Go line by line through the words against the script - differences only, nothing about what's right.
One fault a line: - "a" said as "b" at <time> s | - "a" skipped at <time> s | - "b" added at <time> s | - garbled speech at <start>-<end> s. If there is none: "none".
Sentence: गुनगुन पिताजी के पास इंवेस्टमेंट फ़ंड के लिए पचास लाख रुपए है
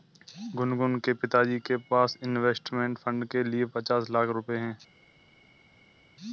- "के" added at 1.0 s